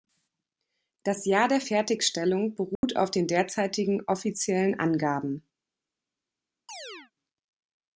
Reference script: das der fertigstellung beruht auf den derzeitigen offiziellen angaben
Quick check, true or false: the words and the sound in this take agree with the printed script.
false